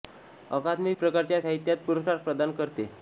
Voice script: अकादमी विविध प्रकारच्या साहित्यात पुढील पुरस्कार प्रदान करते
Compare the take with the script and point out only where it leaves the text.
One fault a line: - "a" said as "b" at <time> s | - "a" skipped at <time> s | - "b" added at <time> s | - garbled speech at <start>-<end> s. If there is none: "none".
- "विविध" skipped at 0.9 s
- "पुढील" skipped at 1.8 s